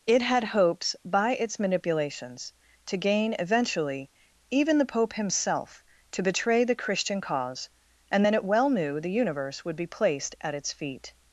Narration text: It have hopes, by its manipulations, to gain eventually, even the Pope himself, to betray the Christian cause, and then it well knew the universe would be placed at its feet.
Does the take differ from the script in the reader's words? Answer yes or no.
yes